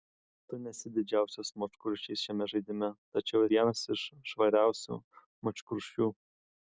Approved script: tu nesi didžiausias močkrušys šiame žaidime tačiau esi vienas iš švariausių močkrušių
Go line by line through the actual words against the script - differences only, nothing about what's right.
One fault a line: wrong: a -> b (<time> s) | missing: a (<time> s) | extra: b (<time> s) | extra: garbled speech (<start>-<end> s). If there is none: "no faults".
missing: esi (3.4 s)